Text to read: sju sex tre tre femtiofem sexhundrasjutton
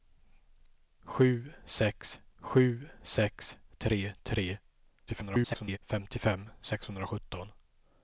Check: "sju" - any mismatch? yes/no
no